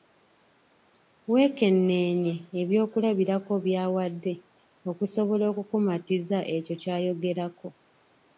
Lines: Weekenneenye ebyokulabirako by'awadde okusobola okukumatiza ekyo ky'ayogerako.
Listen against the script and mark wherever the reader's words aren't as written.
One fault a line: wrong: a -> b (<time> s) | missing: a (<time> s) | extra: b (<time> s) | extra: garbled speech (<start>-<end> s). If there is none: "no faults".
no faults